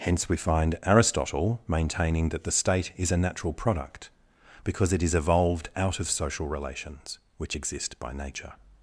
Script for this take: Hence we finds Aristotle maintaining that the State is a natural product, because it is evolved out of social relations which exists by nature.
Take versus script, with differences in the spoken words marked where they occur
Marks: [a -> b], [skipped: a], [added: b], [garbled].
Hence we [finds -> find] Aristotle maintaining that the State is a natural product, because it is evolved out of social relations which [exists -> exist] by nature.